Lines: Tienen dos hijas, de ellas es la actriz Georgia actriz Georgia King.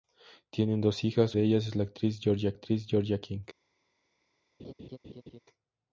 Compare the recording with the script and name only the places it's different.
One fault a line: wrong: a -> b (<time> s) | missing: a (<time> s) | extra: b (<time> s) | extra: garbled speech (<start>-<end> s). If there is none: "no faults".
no faults